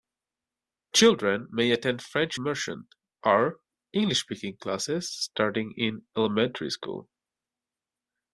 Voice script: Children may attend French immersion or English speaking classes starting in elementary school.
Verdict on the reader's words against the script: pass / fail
pass